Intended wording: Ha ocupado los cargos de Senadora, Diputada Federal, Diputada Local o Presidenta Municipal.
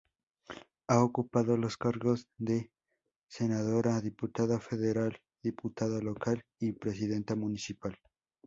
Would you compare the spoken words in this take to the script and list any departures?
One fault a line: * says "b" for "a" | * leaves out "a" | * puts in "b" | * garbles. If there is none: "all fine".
* says "y" for "o"